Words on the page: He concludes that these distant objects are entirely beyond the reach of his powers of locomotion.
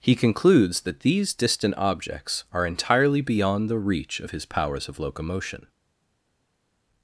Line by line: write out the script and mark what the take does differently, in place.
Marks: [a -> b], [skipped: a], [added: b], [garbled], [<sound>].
He concludes that these distant objects are entirely beyond the reach of his powers of locomotion.